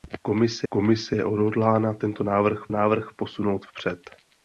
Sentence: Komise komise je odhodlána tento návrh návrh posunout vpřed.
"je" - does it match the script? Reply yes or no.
yes